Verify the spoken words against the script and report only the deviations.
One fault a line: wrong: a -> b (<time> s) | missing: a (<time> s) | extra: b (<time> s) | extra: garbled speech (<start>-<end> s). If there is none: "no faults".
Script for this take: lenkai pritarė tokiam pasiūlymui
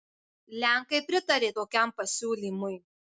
no faults